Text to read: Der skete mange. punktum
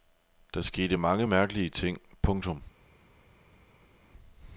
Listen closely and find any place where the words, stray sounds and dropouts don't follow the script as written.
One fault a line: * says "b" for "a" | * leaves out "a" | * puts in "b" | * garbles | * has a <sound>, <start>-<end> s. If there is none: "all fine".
* puts in "mærkelige ting"